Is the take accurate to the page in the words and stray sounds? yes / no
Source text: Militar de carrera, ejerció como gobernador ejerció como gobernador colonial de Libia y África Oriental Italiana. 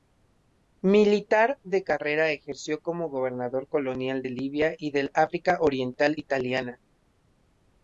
no